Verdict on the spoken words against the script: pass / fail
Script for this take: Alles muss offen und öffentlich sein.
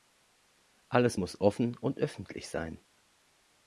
pass